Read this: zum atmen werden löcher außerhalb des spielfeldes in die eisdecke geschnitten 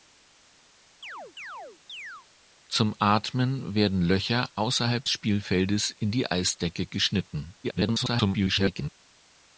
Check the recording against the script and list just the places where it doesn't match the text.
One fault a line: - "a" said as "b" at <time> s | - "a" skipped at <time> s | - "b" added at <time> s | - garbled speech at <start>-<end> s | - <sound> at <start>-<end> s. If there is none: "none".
- chirp at 1.0-2.3 s
- "des" skipped at 5.1 s
- garbled speech at 7.6-8.9 s